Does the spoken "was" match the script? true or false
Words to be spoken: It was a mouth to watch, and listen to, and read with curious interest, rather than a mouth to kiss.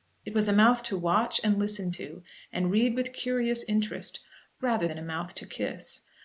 true